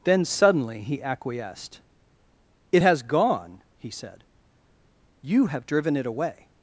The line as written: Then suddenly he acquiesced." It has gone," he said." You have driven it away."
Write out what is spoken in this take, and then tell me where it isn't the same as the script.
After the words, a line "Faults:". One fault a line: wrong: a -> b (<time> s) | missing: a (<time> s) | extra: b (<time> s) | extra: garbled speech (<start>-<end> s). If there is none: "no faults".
Then suddenly he acquiesced." It has gone," he said." You have driven it away."
Faults:
no faults